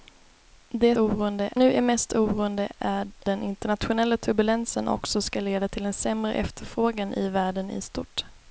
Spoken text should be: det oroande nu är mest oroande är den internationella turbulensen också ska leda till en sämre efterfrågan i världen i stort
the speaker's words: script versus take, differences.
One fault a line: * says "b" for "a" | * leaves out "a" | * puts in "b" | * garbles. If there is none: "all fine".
all fine